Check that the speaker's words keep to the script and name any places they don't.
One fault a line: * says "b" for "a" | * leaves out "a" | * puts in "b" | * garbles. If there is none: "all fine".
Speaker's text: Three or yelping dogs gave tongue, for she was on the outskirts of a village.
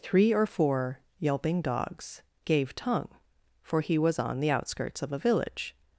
* puts in "four"
* says "he" for "she"